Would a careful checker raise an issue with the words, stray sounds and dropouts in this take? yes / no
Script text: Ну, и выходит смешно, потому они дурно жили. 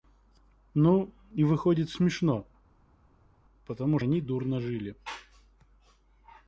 no